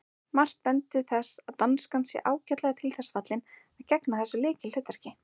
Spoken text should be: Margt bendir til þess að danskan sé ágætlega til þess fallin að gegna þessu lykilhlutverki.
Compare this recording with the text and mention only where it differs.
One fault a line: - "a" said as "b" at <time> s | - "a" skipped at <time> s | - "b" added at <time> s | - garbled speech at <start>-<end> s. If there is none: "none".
none